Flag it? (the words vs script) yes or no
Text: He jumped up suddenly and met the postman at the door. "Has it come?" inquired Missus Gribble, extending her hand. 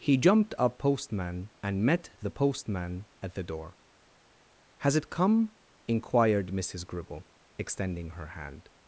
yes